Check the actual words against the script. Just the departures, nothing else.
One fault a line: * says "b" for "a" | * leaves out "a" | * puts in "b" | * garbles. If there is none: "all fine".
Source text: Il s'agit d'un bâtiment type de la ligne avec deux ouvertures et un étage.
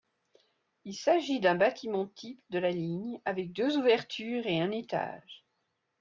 all fine